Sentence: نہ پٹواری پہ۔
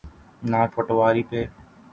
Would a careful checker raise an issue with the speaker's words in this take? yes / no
no